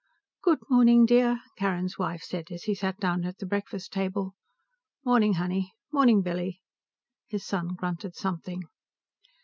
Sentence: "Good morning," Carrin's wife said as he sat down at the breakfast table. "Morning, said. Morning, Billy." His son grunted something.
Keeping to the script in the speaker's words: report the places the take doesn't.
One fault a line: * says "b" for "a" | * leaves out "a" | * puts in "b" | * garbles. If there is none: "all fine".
* puts in "dear"
* says "honey" for "said"